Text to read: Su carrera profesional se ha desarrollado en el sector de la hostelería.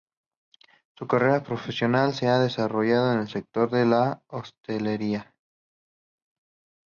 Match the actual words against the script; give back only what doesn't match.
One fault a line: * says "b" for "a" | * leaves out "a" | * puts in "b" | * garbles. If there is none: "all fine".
all fine